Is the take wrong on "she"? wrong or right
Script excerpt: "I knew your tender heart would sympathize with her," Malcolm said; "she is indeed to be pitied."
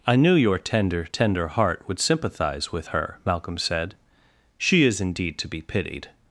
right